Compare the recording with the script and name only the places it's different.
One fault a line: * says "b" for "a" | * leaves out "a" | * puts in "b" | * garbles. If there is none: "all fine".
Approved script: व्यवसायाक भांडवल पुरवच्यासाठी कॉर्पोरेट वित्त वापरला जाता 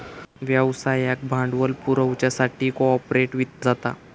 * leaves out "वापरला"